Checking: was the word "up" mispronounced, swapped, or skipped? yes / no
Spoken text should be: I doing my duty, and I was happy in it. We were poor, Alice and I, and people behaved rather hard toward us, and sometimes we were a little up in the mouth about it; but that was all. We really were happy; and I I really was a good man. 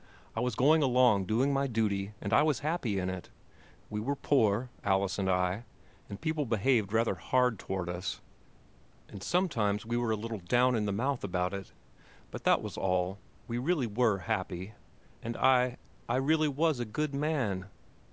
yes